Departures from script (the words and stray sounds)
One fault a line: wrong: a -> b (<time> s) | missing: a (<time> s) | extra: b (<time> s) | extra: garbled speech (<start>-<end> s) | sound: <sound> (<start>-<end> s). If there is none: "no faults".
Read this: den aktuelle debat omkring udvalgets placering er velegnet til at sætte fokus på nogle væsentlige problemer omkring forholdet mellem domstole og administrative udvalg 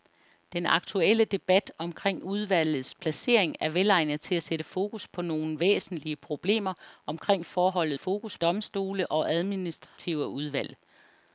wrong: mellem -> fokus (8.0 s)
sound: dropout (9.9-10.0 s)